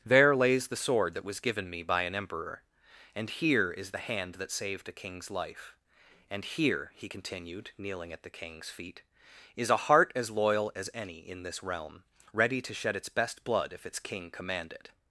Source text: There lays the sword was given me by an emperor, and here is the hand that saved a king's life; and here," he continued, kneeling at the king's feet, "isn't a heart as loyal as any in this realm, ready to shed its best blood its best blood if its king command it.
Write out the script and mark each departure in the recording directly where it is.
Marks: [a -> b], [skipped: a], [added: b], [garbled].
There lays the sword [added: that] was given me by an emperor, and here is the hand that saved a king's life; and here," he continued, kneeling at the king's feet, ["isn't -> is] a heart as loyal as any in this realm, ready to shed its best blood [skipped: its best blood] if its king command it.